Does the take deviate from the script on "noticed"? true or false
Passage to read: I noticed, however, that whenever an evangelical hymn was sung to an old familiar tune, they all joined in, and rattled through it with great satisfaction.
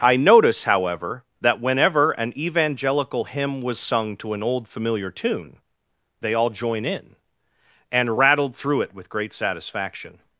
true